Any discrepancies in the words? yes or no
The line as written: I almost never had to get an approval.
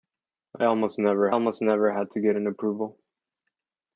yes